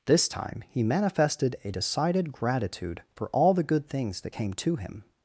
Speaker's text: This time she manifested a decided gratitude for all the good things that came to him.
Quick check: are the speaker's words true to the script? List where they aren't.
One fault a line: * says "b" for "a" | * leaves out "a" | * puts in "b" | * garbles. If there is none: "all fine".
* says "he" for "she"